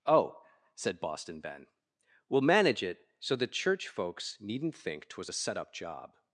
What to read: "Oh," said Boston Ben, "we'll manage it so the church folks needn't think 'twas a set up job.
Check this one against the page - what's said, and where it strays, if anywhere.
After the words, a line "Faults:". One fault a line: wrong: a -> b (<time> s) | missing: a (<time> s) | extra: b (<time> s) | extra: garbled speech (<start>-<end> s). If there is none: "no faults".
"Oh," said Boston Ben, "we'll manage it so the church folks needn't think 'twas a set up job.
Faults:
no faults